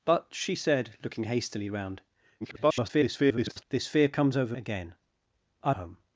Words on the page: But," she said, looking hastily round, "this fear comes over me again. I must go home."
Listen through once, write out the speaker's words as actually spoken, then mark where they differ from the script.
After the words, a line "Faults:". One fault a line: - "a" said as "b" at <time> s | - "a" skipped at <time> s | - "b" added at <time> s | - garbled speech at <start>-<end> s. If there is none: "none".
But," she said, looking hastily round, [garbled] "this fear comes over again. I home."
Faults:
- garbled speech at 2.4-3.6 s
- "me" skipped at 4.5 s
- "must go" skipped at 5.7 s